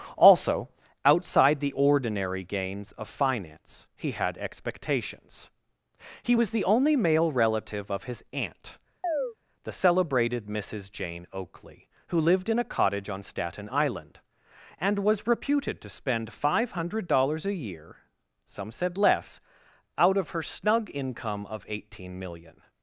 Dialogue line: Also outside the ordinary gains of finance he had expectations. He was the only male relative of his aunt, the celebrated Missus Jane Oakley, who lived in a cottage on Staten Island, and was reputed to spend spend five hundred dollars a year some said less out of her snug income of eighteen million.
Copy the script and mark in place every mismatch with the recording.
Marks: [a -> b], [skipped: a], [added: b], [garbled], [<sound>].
Also outside the ordinary gains of finance he had expectations. He was the only male relative of his aunt, [chirp] the celebrated Missus Jane Oakley, who lived in a cottage on Staten Island, and was reputed to spend [skipped: spend] five hundred dollars a year some said less out of her snug income of eighteen million.